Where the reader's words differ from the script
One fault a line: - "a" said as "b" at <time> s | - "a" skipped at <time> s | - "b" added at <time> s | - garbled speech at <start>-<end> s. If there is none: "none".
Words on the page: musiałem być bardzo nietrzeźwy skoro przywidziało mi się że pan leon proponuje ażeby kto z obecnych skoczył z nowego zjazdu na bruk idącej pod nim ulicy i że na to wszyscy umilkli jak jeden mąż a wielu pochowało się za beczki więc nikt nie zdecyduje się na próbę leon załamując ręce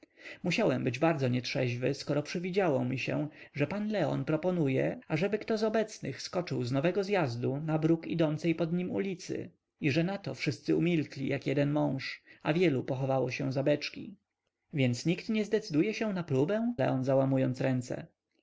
none